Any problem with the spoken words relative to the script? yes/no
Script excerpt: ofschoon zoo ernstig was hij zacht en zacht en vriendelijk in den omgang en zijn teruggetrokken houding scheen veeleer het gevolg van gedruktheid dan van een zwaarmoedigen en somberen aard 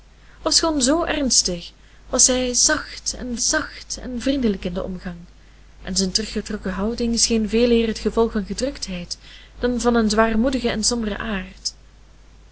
no